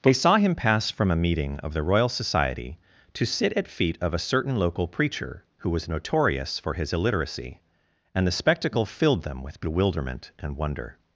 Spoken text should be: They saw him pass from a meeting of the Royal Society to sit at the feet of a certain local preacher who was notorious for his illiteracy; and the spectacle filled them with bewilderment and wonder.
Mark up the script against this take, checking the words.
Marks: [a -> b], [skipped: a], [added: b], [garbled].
They saw him pass from a meeting of the Royal Society to sit at [skipped: the] feet of a certain local preacher who was notorious for his illiteracy; and the spectacle filled them with bewilderment and wonder.